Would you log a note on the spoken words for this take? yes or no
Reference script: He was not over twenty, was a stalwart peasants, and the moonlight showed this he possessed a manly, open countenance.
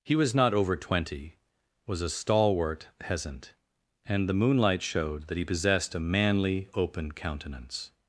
yes